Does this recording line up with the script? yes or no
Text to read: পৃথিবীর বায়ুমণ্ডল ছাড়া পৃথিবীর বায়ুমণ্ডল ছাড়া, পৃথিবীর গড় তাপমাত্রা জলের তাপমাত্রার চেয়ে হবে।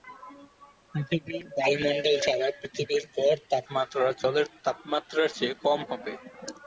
no